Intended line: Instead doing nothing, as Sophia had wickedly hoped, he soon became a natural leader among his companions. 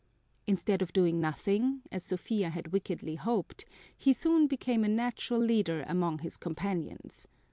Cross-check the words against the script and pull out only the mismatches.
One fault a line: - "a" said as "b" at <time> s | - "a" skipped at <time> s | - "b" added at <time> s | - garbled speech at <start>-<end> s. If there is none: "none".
- "of" added at 0.8 s